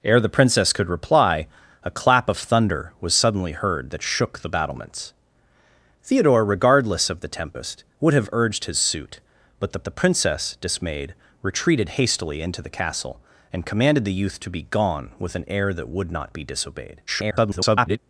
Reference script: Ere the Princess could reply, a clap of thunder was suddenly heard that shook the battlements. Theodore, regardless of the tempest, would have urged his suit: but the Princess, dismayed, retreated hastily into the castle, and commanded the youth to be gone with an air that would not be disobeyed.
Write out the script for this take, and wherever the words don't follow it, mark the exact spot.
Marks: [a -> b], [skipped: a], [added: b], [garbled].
Ere the Princess could reply, a clap of thunder was suddenly heard that shook the battlements. Theodore, regardless of the tempest, would have urged his suit: but the [added: the] Princess, dismayed, retreated hastily into the castle, and commanded the youth to be gone with an air that would not be disobeyed. [garbled]